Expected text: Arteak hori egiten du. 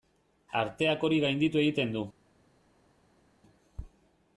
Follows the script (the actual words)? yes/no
no